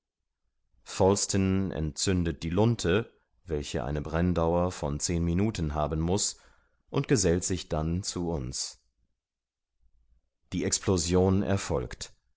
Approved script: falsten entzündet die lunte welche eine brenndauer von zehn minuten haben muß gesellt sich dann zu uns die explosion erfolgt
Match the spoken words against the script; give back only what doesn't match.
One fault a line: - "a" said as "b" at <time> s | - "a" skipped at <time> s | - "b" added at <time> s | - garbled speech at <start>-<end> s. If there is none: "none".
- "und" added at 6.9 s